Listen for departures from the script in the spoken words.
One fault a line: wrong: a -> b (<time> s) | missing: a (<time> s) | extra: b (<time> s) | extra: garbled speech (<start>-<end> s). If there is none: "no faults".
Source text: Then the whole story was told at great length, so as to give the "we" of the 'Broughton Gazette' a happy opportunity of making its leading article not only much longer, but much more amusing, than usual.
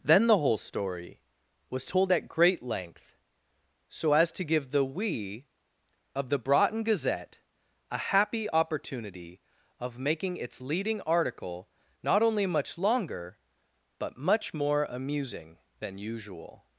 no faults